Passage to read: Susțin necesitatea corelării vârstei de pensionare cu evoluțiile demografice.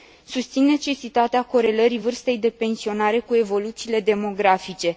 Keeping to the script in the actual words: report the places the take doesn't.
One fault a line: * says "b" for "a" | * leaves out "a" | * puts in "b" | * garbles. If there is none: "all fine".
all fine